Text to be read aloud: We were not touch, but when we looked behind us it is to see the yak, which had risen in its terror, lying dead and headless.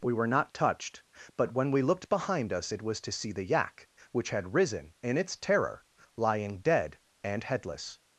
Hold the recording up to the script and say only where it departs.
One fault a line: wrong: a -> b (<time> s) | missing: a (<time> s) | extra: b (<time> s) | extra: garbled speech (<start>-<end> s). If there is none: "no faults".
wrong: touch -> touched (0.5 s)
wrong: is -> was (2.8 s)